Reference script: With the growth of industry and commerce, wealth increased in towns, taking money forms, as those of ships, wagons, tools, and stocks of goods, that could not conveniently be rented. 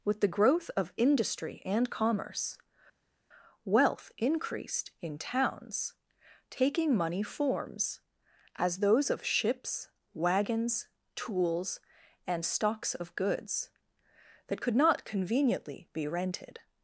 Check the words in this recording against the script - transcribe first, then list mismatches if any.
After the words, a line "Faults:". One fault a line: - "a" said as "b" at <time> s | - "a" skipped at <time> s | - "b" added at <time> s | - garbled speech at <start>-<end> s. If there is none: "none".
With the growth of industry and commerce, wealth increased in towns, taking money forms, as those of ships, wagons, tools, and stocks of goods, that could not conveniently be rented.
Faults:
none